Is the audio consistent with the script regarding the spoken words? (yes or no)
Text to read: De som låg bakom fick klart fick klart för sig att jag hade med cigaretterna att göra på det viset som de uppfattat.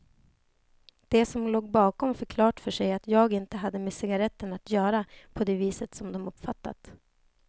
no